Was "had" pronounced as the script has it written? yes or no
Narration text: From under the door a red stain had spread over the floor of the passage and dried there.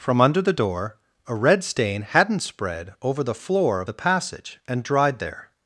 no